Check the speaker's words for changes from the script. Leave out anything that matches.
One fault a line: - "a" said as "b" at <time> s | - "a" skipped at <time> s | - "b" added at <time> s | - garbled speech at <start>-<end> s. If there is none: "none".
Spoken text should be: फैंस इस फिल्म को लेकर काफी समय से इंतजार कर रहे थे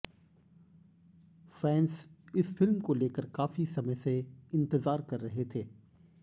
none